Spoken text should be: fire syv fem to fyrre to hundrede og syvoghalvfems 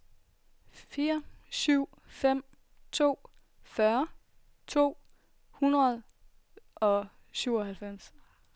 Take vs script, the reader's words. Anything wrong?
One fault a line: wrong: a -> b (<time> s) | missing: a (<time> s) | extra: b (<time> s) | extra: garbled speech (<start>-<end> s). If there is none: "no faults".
no faults